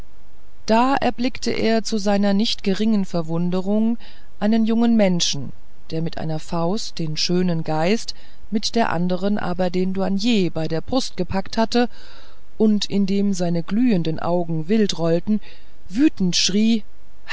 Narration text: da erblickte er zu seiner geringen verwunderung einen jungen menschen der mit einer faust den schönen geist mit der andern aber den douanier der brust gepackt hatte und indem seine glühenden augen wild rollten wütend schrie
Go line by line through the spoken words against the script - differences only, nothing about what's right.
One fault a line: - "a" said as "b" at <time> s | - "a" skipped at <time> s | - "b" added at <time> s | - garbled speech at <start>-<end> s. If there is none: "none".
- "nicht" added at 2.3 s
- "bei" added at 10.5 s